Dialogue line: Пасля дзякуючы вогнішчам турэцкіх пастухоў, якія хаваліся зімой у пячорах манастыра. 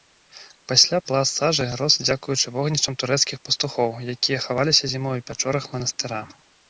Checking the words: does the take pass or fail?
fail